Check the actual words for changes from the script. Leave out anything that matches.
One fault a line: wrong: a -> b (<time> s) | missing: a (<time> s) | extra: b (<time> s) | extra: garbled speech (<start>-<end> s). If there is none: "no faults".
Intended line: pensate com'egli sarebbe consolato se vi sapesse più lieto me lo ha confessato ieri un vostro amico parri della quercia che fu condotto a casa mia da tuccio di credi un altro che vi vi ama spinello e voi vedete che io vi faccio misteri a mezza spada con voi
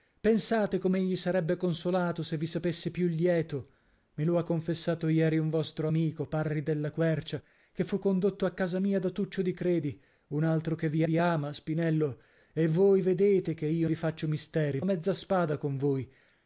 no faults